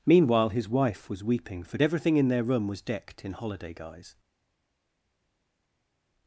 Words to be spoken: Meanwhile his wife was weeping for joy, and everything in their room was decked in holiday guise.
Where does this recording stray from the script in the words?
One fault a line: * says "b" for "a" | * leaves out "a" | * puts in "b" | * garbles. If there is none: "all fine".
* leaves out "joy and"